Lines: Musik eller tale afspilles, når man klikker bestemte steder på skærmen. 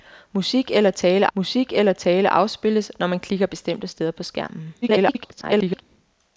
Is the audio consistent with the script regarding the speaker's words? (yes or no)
no